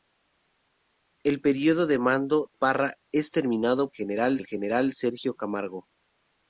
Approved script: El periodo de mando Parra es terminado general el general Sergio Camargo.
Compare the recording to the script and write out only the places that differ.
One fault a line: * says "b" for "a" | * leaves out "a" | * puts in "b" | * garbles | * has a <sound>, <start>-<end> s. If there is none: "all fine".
all fine